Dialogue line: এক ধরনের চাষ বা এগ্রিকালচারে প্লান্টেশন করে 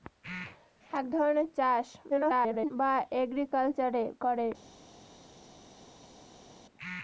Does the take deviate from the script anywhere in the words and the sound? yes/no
yes